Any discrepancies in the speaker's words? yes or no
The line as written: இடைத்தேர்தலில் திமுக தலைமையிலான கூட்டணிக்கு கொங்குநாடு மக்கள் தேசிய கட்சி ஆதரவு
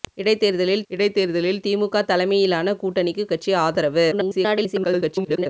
yes